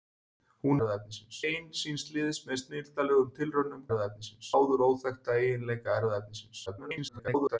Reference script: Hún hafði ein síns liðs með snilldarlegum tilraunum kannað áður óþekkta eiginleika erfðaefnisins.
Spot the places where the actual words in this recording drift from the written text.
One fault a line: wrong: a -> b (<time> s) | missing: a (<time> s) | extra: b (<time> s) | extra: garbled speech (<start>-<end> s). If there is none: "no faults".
wrong: hafði -> erfðaefnisins (0.8 s)
wrong: kannað -> erfðaefnisins (3.9 s)
extra: garbled speech (6.7-7.6 s)